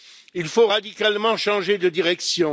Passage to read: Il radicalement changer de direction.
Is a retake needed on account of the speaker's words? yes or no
yes